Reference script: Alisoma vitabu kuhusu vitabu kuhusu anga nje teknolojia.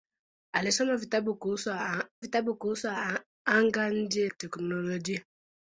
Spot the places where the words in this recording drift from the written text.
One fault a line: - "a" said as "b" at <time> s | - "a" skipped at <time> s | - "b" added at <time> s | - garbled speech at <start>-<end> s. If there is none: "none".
none